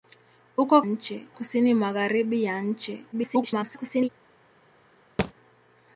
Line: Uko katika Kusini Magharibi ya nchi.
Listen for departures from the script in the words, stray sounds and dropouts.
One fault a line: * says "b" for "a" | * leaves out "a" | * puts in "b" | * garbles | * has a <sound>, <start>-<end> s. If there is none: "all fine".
* says "nchi" for "katika"
* garbles
* has a thud, 5.2-5.3 s